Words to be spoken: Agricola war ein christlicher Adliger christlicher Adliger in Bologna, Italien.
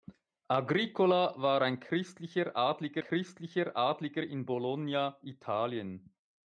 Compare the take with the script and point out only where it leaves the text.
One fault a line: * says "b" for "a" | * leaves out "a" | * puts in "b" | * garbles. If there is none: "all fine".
all fine